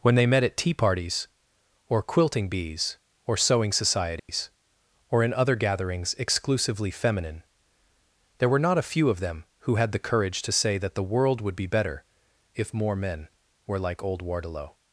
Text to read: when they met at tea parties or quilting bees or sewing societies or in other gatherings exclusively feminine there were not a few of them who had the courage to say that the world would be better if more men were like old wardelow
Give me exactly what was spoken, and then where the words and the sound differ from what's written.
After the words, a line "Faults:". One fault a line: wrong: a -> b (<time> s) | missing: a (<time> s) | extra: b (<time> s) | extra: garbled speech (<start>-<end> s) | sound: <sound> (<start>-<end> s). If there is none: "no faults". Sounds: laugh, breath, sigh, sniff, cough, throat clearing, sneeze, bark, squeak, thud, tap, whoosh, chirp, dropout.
when they met at tea parties or quilting bees or sewing societies or in other gatherings exclusively feminine there were not a few of them who had the courage to say that the world would be better if more men were like old wardelow
Faults:
sound: dropout (4.2-4.3 s)